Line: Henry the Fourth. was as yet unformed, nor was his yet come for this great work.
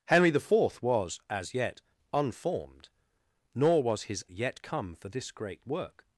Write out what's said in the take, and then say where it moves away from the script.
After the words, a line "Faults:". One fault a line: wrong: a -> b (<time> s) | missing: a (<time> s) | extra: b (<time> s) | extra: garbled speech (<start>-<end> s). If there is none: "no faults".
Henry the Fourth. was as yet unformed, nor was his yet come for this great work.
Faults:
no faults